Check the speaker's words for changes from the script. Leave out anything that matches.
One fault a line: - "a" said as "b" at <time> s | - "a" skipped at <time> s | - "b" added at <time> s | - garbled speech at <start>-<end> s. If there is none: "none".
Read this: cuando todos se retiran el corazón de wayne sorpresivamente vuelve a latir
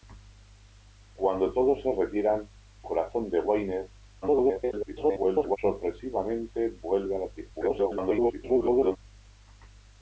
- "el" skipped at 2.5 s
- garbled speech at 4.2-5.6 s
- garbled speech at 7.5-9.0 s